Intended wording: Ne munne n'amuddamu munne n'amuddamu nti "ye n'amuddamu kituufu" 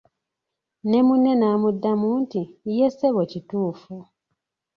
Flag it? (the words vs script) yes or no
yes